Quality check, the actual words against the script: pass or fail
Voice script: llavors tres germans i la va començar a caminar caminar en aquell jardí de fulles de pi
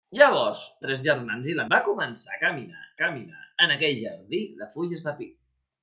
pass